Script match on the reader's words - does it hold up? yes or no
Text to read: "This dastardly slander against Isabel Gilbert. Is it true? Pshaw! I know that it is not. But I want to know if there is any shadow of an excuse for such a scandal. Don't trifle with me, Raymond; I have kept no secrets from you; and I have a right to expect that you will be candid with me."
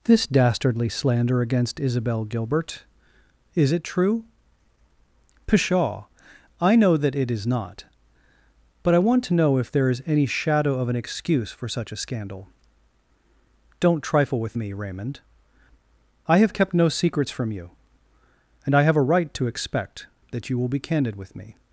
yes